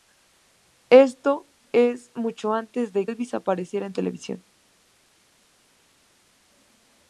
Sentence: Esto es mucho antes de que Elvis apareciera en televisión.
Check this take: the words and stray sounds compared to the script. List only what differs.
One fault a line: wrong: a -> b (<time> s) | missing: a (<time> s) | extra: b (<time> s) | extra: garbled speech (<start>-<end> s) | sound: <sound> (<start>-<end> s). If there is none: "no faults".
missing: que (3.1 s)